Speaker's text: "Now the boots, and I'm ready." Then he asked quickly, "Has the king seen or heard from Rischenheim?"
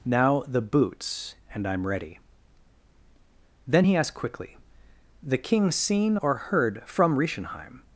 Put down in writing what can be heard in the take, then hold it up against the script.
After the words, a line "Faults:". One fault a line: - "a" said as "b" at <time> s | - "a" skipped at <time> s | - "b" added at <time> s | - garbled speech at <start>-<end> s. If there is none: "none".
"Now the boots, and I'm ready." Then he asked quickly, "the king seen or heard from Rischenheim?"
Faults:
- "Has" skipped at 4.6 s